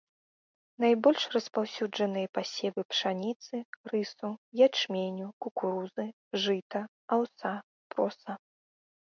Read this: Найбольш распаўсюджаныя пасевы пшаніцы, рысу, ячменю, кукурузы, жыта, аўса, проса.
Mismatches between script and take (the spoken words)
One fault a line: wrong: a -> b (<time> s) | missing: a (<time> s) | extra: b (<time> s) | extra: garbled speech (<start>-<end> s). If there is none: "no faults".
no faults